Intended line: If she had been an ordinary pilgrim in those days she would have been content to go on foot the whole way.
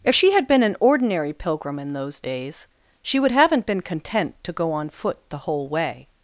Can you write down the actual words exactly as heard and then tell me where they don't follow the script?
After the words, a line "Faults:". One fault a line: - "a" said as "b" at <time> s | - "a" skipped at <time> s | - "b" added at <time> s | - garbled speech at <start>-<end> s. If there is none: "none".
If she had been an ordinary pilgrim in those days she would haven't been content to go on foot the whole way.
Faults:
- "have" said as "haven't" at 3.3 s